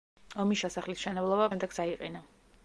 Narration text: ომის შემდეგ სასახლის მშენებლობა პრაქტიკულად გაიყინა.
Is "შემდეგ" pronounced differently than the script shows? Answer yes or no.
yes